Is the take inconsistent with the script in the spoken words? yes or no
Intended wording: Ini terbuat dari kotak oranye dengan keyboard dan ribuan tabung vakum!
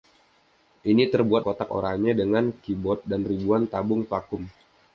yes